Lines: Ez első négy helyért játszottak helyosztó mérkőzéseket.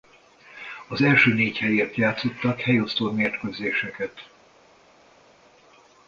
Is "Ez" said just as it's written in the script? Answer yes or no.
no